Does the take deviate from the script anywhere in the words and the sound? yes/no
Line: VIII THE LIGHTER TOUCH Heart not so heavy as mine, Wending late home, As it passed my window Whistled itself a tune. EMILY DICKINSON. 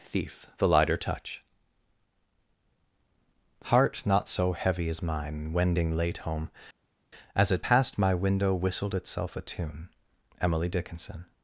yes